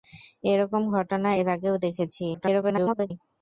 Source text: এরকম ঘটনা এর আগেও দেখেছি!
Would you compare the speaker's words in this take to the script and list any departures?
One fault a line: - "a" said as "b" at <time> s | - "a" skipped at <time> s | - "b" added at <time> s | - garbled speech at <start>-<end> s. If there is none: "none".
- garbled speech at 2.3-3.1 s